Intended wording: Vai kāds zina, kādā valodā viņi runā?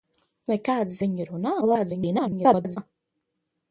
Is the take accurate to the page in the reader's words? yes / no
no